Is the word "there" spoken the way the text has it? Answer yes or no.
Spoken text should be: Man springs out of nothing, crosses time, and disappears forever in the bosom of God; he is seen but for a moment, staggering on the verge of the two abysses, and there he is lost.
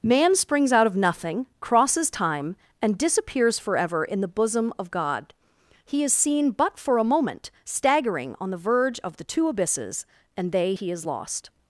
no